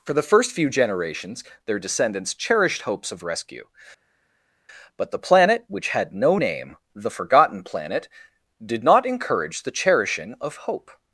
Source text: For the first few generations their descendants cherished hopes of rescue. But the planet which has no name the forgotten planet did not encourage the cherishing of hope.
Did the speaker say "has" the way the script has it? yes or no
no